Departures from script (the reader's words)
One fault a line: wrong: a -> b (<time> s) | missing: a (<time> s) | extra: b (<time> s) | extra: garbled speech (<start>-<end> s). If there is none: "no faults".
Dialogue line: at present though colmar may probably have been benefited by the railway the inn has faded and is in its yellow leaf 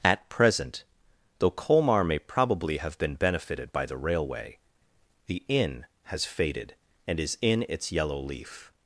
no faults